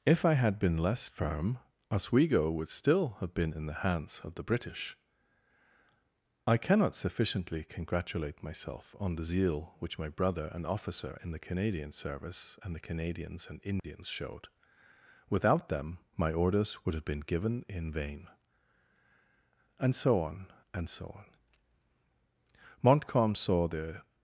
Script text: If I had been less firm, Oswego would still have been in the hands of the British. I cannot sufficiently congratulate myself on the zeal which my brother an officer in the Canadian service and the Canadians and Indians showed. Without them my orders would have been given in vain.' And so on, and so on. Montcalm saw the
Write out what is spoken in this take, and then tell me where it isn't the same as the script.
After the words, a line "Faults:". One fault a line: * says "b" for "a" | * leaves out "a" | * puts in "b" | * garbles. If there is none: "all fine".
If I had been less firm, Oswego would still have been in the hands of the British. I cannot sufficiently congratulate myself on the zeal which my brother an officer in the Canadian service and the Canadians and Indians showed. Without them my orders would have been given in vain.' And so on, and so on. Montcalm saw the
Faults:
all fine